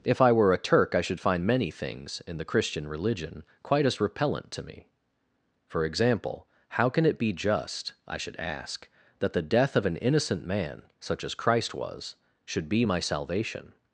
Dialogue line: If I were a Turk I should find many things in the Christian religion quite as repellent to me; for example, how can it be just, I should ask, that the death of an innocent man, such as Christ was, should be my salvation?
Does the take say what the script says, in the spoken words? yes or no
yes